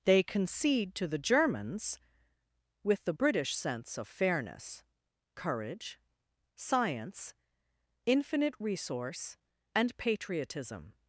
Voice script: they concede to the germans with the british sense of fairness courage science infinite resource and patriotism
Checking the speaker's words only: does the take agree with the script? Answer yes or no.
yes